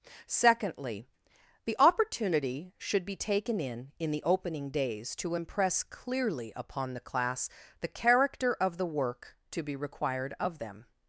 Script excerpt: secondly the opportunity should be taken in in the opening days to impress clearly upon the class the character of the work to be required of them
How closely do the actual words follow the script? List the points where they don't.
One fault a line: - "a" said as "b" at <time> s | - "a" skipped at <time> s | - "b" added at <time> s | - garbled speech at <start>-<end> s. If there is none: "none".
none